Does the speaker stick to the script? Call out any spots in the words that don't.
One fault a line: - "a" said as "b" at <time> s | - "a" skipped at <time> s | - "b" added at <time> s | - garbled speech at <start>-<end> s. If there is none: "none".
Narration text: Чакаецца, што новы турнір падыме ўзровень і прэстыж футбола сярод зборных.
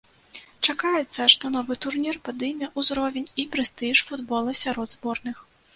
none